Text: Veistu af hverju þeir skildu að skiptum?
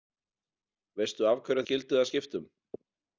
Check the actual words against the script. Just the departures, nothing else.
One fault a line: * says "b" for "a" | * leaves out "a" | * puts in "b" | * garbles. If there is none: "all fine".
* leaves out "þeir"